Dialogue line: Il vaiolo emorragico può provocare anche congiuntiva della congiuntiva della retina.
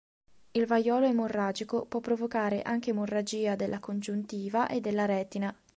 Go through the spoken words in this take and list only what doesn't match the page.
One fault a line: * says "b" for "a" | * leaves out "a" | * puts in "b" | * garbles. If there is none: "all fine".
* says "emorragia" for "congiuntiva"
* puts in "e"